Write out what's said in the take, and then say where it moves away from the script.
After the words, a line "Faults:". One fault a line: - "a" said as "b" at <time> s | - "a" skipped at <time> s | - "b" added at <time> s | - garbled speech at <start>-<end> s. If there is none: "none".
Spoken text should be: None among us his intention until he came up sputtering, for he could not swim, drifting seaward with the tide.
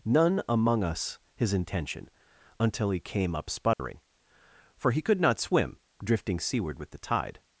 None among us his intention until he came up sputtering, for he could not swim, drifting seaward with the tide.
Faults:
none